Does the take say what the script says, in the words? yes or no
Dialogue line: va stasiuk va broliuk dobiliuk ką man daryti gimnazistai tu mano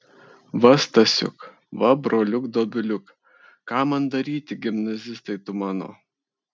yes